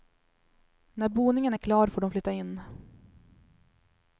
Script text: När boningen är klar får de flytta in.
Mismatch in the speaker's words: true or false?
false